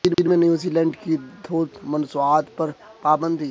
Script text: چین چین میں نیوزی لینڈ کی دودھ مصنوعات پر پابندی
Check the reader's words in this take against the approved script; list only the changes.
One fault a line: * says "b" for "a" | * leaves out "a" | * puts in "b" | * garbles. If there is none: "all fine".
all fine